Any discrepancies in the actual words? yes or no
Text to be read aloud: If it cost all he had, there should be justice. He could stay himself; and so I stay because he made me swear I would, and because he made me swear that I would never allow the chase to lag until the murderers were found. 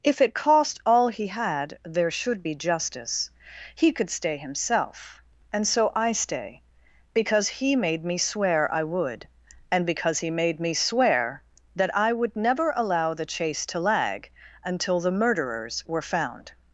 no